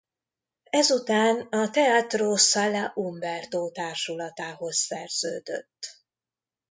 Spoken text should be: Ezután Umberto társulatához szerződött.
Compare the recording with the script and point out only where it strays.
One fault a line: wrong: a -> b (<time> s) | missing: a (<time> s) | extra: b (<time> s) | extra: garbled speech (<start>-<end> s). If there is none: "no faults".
extra: a Teatro Sala (1.5 s)